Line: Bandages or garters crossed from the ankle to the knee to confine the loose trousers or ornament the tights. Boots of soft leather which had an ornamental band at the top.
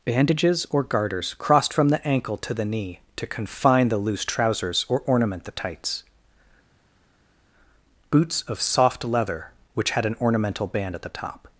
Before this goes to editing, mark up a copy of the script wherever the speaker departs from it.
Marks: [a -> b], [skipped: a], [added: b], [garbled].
Bandages or garters crossed from the ankle to the knee to confine the loose trousers or ornament the tights. Boots of soft leather which had an ornamental band at the top.